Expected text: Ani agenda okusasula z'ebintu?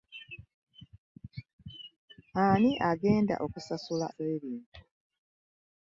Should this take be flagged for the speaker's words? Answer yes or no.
no